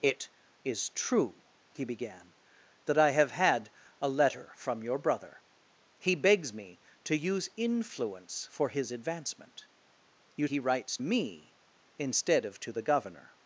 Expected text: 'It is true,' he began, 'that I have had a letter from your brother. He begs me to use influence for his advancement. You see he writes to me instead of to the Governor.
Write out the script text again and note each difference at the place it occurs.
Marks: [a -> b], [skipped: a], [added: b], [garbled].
'It is true,' he began, 'that I have had a letter from your brother. He begs me to use influence for his advancement. You [skipped: see] he writes [skipped: to] me instead of to the Governor.